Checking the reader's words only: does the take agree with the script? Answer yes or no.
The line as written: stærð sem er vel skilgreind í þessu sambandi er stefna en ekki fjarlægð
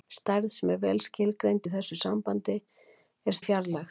no